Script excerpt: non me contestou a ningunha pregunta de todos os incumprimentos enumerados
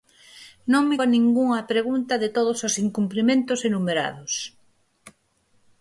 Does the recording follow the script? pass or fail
fail